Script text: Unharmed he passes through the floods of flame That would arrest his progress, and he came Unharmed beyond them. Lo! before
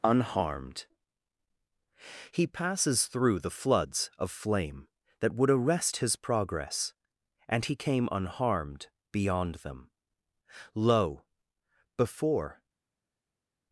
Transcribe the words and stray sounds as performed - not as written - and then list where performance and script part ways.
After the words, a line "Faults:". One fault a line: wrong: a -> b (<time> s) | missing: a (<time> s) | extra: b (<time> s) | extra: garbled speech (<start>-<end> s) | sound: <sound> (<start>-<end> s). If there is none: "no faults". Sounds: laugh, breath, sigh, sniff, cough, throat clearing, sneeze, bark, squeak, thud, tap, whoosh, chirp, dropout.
Unharmed he passes through the floods of flame That would arrest his progress, and he came Unharmed beyond them. Lo! before
Faults:
no faults